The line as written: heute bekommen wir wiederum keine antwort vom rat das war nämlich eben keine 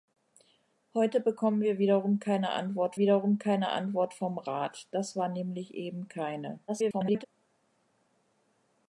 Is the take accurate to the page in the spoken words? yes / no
no